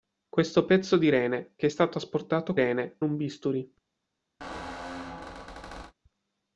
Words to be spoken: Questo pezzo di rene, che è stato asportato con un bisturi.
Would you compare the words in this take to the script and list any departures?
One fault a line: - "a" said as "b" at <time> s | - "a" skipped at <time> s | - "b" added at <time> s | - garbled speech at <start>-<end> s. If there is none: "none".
- "con" said as "rene" at 2.5 s